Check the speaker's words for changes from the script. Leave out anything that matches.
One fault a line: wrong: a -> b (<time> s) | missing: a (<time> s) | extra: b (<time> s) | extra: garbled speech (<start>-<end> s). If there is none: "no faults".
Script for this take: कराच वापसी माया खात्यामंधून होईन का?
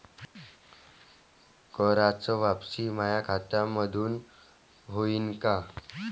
no faults